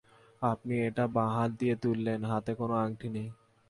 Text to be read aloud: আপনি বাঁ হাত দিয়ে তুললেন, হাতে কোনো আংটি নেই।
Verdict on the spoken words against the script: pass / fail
fail